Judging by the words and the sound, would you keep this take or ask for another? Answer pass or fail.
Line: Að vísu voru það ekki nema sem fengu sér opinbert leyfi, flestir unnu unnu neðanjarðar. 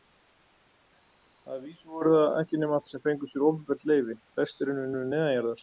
pass